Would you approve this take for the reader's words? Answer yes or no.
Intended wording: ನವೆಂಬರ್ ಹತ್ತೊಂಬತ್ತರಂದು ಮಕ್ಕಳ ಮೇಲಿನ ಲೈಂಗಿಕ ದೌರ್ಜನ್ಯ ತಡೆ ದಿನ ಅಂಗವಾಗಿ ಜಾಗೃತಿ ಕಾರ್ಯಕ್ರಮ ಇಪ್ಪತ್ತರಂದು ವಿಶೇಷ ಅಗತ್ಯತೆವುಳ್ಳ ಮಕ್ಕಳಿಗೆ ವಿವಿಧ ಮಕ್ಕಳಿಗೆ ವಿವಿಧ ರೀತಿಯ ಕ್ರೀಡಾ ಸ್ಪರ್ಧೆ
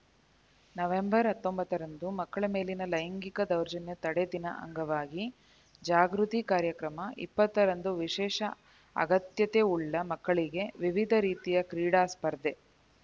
no